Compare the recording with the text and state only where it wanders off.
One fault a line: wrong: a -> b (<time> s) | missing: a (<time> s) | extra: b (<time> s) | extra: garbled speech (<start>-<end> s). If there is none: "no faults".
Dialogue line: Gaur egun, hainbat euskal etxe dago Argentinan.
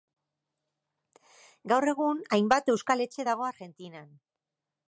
no faults